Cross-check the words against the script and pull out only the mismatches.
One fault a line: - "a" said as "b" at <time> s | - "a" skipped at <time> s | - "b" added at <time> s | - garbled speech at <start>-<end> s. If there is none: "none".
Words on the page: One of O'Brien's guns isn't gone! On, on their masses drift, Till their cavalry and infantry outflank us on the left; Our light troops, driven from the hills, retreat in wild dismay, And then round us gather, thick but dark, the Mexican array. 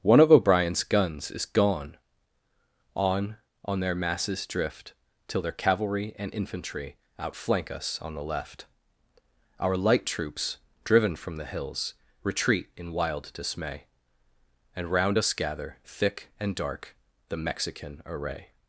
- "isn't" said as "is" at 1.3 s
- "then" skipped at 14.9 s
- "but" said as "and" at 16.4 s